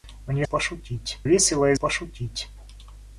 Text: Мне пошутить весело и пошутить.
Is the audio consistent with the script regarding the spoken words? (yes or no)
yes